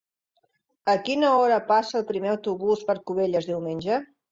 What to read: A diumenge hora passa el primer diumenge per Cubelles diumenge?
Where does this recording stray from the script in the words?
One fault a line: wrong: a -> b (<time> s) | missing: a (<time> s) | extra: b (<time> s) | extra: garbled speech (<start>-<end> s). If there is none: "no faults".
wrong: diumenge -> quina (1.1 s)
wrong: diumenge -> autobús (2.4 s)